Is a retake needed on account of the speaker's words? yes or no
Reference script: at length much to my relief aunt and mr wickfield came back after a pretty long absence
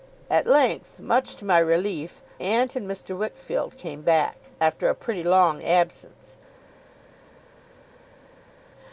no